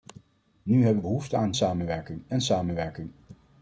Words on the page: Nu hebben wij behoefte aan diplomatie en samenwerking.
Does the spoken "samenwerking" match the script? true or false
true